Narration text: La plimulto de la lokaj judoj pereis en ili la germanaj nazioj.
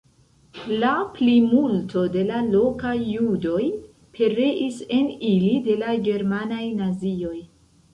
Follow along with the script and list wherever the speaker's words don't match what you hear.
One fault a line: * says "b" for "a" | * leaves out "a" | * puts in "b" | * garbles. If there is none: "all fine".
* puts in "de"